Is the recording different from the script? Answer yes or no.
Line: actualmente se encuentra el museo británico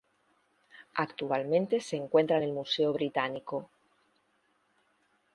no